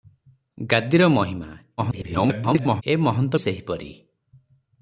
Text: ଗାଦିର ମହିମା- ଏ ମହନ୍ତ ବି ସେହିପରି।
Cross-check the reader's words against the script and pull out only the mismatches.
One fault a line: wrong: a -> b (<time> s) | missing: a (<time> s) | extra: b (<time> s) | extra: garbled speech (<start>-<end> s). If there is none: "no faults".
extra: garbled speech (1.8-2.8 s)
missing: ବି (3.4 s)